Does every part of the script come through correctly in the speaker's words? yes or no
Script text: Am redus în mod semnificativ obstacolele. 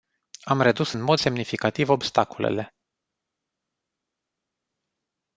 yes